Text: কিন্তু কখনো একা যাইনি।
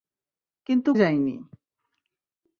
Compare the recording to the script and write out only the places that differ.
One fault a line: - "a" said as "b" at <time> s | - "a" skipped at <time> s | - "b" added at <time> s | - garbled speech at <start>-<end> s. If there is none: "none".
- "কখনো একা" skipped at 0.9 s